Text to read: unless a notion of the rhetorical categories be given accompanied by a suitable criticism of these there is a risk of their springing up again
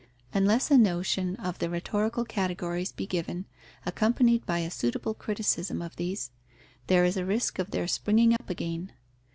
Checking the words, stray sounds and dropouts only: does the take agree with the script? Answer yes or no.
no